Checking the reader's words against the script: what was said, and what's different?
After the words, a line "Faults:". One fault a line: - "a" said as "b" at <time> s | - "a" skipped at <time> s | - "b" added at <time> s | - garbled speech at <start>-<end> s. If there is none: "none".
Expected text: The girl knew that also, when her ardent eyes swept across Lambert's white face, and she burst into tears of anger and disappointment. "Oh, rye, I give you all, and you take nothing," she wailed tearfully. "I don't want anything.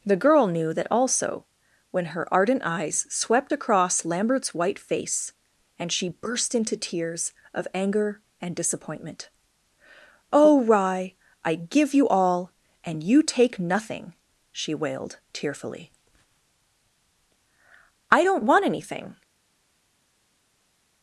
The girl knew that also, when her ardent eyes swept across Lambert's white face, and she burst into tears of anger and disappointment. "Oh, rye, I give you all, and you take nothing," she wailed tearfully. "I don't want anything.
Faults:
none